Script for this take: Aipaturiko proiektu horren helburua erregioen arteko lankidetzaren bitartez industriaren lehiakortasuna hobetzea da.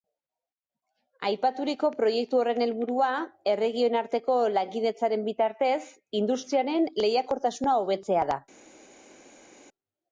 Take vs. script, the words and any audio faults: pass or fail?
pass